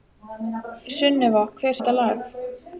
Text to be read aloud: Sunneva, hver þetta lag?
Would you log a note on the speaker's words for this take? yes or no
no